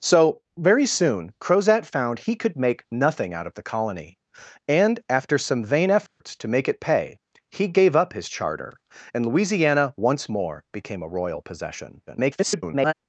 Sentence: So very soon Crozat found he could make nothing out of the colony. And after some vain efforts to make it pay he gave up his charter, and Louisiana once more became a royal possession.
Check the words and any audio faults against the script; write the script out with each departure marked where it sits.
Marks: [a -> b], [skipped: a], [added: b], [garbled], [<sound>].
So very soon Crozat found he could make nothing out of the colony. And after some vain efforts [dropout] to make it pay he gave up his charter, and Louisiana once more became a royal possession. [garbled]